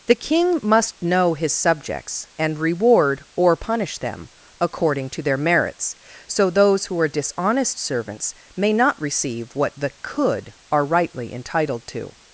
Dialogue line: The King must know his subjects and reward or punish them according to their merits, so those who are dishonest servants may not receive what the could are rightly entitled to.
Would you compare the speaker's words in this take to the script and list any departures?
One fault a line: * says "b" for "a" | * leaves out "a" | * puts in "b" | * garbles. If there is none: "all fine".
all fine